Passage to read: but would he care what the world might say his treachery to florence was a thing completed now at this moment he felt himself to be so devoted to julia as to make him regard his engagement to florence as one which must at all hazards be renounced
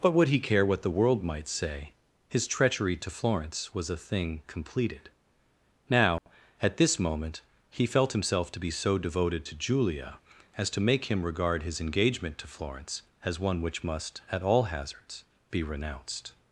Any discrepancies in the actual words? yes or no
no